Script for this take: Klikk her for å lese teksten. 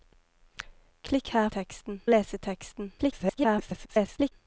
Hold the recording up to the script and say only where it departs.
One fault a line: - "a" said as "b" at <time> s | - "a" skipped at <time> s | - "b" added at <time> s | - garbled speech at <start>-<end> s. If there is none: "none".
- "for" said as "teksten" at 1.5 s
- garbled speech at 3.0-4.3 s